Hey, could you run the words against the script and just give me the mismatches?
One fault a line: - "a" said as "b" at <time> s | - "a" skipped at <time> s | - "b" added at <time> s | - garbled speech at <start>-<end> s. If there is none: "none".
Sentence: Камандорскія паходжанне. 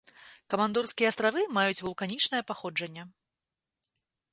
- "астравы маюць вулканічнае" added at 1.1 s